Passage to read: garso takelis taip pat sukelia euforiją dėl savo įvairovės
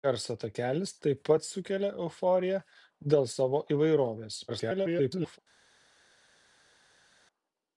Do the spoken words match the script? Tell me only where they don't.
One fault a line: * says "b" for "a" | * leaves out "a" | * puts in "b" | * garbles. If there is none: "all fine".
* garbles